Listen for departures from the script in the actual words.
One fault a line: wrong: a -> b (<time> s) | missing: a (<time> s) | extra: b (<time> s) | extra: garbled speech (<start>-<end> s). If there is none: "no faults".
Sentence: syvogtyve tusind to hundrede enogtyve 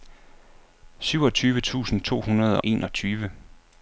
no faults